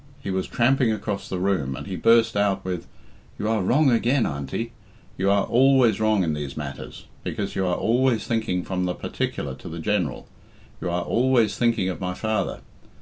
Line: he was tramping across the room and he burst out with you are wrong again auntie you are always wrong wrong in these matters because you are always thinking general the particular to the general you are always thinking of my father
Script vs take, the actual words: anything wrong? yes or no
yes